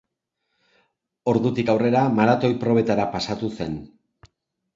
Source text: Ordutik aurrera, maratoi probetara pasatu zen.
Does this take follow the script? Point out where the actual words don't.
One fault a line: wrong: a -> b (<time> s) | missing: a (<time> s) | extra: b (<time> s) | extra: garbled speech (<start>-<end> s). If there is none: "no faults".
no faults